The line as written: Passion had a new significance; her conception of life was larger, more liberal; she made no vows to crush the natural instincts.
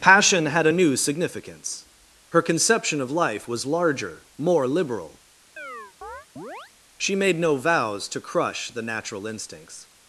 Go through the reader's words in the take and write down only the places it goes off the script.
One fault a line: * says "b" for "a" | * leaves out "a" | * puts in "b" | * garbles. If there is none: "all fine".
all fine